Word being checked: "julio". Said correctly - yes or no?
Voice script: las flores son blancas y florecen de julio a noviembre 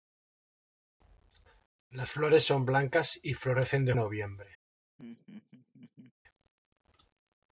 no